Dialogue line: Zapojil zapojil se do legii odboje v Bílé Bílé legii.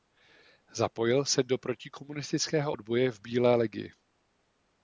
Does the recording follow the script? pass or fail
fail